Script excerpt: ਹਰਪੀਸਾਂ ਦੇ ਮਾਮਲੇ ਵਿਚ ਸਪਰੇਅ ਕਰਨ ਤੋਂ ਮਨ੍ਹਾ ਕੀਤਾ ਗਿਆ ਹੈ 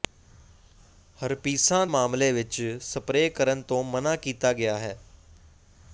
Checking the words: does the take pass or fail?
fail